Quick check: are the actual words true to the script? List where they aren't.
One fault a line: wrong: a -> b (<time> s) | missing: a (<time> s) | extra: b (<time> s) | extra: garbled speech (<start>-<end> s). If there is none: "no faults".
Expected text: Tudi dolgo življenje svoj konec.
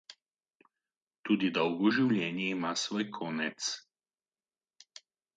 extra: ima (2.6 s)